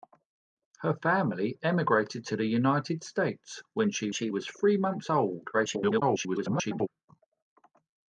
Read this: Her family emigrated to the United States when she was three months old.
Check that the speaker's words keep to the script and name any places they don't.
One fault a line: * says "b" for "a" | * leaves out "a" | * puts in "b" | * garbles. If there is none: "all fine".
* puts in "she"
* garbles